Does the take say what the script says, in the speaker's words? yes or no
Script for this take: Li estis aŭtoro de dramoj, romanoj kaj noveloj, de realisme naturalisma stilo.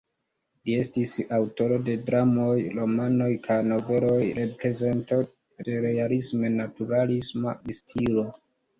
yes